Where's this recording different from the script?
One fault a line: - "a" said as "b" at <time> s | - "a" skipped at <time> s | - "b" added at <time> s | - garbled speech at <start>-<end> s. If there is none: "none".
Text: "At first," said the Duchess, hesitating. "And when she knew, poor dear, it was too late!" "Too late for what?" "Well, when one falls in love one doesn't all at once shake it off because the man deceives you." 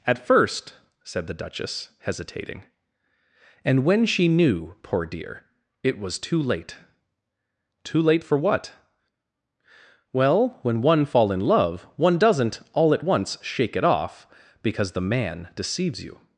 - "falls" said as "fall" at 11.1 s